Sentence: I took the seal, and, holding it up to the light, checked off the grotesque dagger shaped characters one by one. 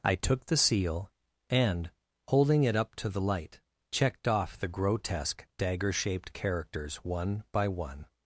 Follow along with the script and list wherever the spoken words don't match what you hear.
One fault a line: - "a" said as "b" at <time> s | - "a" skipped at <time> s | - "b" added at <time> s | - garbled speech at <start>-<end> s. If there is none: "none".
none